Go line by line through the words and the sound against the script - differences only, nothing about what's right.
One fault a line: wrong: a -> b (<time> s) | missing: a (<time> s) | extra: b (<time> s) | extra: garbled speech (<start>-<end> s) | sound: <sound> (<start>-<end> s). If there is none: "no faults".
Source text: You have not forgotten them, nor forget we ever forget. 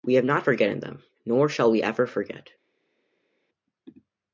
wrong: You -> We (0.0 s)
wrong: forget -> shall (1.5 s)